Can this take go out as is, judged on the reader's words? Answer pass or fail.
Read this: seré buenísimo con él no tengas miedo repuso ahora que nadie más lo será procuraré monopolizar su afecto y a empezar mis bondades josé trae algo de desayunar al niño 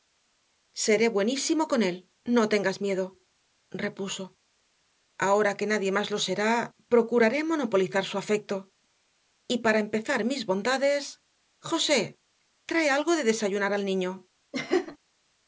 fail